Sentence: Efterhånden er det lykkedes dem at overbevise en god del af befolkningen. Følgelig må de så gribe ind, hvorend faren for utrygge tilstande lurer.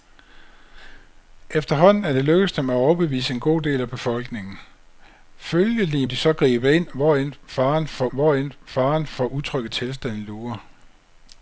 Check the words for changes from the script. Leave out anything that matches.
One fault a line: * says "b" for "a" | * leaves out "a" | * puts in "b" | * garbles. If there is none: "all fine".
* leaves out "må"
* puts in "hvorend faren for"